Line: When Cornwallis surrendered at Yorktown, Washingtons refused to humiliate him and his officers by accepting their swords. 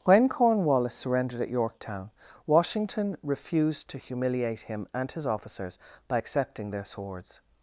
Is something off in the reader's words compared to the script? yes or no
yes